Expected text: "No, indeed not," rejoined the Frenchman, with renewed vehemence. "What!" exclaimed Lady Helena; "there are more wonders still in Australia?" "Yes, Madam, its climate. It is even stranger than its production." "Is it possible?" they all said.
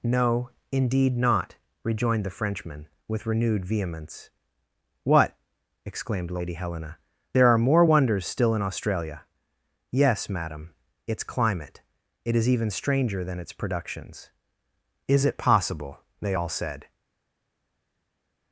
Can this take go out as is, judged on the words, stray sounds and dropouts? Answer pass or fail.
fail